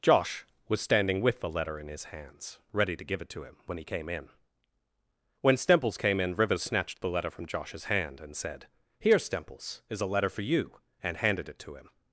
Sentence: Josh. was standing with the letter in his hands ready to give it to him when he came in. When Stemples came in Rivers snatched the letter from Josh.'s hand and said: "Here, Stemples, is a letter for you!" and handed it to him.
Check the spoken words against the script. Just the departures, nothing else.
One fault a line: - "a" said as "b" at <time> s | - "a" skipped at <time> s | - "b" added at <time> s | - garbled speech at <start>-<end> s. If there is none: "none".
none